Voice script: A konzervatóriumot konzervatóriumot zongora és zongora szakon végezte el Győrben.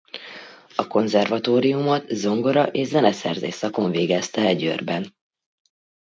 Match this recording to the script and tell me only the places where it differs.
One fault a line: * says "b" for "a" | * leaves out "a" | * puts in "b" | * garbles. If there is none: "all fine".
* leaves out "konzervatóriumot"
* says "zeneszerzés" for "zongora"